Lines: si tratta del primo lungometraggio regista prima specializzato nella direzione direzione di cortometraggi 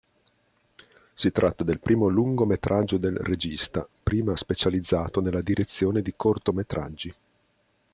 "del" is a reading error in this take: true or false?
false